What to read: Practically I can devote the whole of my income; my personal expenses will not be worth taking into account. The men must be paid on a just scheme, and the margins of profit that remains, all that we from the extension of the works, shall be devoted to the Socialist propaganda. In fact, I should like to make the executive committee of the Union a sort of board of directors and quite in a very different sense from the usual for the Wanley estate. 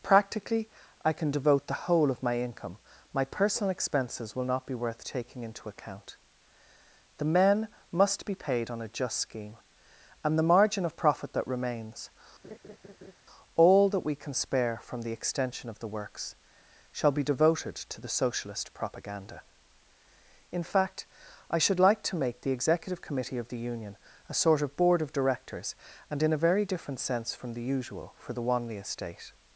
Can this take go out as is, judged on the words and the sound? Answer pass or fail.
fail